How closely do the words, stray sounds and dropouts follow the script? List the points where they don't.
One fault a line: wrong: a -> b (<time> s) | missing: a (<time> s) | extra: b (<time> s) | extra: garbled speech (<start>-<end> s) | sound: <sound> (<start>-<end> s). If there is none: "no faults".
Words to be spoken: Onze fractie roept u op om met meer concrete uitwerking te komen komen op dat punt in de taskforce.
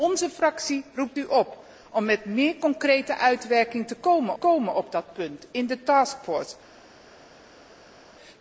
no faults